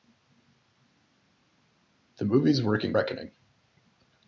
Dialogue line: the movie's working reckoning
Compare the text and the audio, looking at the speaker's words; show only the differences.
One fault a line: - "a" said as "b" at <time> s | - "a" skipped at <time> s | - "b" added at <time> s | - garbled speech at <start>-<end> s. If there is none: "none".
none